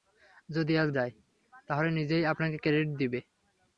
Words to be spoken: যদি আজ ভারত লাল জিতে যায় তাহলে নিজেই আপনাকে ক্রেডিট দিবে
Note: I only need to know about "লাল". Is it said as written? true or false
false